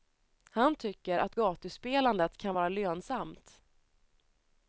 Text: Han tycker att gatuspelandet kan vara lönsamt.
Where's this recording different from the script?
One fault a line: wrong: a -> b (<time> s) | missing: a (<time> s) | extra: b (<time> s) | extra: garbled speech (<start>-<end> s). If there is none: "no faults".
no faults